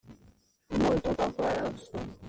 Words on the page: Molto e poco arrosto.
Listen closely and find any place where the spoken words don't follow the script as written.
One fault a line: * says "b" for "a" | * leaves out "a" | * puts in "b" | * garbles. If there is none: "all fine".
all fine